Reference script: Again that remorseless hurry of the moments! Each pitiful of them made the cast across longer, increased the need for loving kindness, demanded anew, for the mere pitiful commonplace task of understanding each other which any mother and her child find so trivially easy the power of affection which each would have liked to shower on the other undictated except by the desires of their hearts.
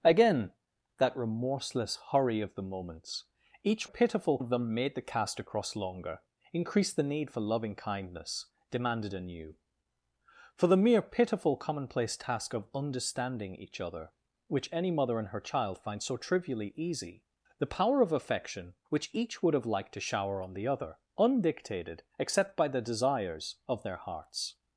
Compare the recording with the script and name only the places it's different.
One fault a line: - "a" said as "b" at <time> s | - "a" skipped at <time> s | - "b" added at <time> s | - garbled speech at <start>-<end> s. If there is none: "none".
none